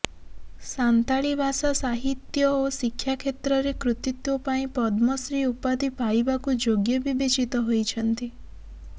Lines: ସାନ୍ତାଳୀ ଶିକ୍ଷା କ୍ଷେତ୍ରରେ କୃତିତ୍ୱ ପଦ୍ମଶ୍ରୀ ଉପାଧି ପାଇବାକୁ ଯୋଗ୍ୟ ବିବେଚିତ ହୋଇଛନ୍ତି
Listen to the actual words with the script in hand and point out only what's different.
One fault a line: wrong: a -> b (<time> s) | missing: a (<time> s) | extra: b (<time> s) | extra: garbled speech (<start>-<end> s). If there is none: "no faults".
extra: ଭାଷା ସାହିତ୍ୟ ଓ (1.4 s)
extra: ପାଇଁ (4.5 s)